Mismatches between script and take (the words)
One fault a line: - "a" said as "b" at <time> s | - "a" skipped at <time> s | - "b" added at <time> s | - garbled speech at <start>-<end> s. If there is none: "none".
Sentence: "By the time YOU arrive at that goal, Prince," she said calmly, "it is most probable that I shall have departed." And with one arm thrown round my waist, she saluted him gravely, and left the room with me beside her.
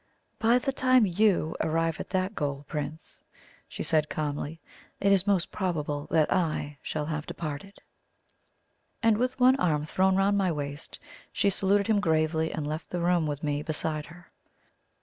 none